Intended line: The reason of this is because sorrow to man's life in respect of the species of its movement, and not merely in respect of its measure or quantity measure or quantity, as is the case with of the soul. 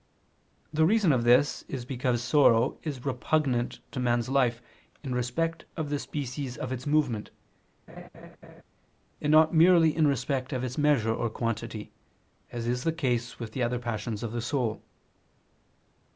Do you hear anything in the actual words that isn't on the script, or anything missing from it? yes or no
yes